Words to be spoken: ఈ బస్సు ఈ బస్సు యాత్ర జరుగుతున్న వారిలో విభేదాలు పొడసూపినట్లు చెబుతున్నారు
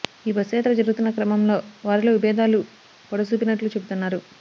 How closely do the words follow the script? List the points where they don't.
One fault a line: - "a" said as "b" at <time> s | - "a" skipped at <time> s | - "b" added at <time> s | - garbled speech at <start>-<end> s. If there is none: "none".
- "ఈ బస్సు" skipped at 0.5 s
- "క్రమంలో" added at 1.1 s